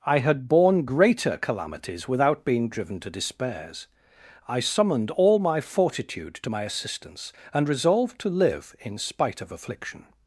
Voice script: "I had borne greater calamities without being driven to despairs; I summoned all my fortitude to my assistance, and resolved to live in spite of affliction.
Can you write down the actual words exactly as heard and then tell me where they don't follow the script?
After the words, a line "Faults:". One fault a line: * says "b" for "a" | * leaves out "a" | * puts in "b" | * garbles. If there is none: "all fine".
"I had borne greater calamities without being driven to despairs; I summoned all my fortitude to my assistance, and resolved to live in spite of affliction.
Faults:
all fine